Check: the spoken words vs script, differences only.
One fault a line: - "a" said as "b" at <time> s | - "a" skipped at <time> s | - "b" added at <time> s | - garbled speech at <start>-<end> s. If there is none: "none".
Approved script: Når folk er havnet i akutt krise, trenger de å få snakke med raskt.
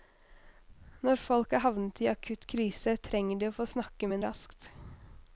none